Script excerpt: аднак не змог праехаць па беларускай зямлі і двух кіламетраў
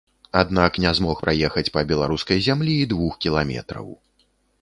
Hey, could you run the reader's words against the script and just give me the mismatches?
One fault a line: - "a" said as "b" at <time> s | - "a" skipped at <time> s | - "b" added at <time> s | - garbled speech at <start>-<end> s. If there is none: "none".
none